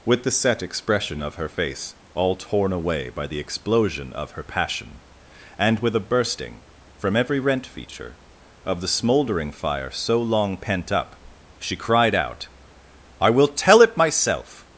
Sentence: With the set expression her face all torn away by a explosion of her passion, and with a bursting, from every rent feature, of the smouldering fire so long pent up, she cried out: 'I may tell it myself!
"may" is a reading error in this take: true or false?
true